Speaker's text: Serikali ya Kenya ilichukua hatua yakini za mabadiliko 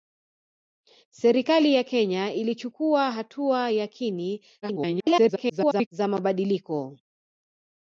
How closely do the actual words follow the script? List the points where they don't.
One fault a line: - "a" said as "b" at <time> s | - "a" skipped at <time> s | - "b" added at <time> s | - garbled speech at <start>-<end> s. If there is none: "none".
- garbled speech at 4.6-5.9 s